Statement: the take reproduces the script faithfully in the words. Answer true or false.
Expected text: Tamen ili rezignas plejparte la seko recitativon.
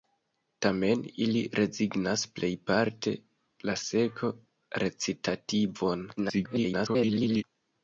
false